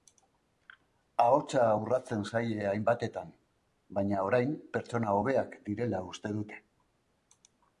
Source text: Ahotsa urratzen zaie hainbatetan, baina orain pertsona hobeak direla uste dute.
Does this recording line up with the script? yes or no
yes